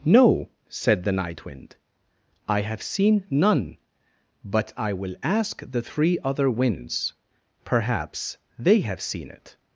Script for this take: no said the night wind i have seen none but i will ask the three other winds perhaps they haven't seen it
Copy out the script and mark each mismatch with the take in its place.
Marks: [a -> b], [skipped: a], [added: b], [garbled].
no said the night wind i have seen none but i will ask the three other winds perhaps they [haven't -> have] seen it